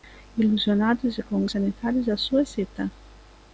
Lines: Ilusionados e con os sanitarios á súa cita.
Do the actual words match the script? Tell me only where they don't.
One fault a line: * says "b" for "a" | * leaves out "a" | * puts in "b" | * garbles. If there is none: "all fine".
all fine